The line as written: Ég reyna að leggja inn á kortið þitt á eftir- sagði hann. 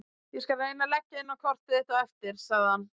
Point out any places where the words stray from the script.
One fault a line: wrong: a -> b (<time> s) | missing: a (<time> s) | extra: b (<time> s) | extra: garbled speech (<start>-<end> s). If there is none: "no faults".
extra: skal (0.5 s)